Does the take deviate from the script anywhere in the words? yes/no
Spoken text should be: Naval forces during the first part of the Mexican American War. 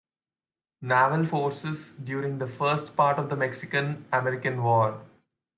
no